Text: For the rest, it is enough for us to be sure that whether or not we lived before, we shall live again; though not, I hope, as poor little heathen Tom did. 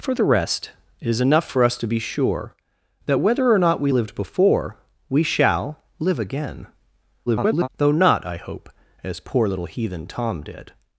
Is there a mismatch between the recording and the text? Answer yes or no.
yes